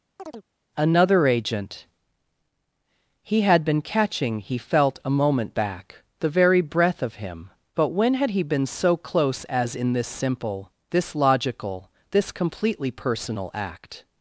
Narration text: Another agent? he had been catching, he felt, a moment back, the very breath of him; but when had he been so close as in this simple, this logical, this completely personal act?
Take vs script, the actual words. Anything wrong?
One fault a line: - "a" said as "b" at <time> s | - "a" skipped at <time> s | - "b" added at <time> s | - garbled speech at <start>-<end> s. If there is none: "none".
none